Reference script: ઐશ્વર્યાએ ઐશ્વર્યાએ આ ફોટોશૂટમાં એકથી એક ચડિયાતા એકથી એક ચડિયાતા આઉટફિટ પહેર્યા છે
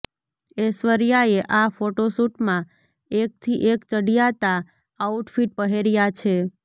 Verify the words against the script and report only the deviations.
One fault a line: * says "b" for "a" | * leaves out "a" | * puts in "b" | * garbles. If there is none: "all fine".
* leaves out "ઐશ્વર્યાએ"
* leaves out "એકથી એક ચડિયાતા"